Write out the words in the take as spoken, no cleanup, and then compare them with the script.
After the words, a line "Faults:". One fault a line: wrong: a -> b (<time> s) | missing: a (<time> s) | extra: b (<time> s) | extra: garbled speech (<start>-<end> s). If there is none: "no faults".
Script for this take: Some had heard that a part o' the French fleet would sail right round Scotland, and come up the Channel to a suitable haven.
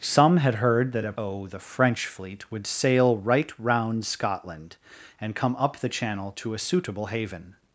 Some had heard that a o' the French fleet would sail right round Scotland, and come up the Channel to a suitable haven.
Faults:
missing: part (1.1 s)